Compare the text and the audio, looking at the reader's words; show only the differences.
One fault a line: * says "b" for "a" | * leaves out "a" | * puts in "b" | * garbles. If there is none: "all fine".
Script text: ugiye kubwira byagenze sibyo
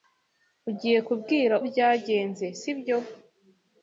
all fine